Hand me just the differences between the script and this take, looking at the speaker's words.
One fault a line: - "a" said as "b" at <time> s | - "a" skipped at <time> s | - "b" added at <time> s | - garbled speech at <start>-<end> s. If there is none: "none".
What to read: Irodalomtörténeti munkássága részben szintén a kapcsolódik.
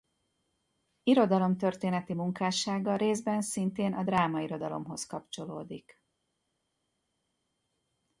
- "drámairodalomhoz" added at 4.0 s